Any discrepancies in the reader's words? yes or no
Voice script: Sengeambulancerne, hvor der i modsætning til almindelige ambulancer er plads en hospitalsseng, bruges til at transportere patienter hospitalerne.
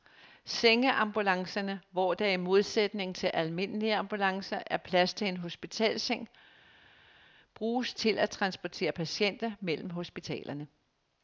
yes